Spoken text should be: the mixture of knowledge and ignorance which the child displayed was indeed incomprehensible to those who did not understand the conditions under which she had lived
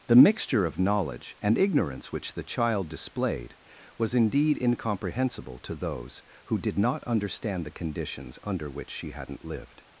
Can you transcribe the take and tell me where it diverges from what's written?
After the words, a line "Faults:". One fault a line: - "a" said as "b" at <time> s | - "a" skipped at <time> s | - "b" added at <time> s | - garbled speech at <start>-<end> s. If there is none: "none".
the mixture of knowledge and ignorance which the child displayed was indeed incomprehensible to those who did not understand the conditions under which she hadn't lived
Faults:
- "had" said as "hadn't" at 9.1 s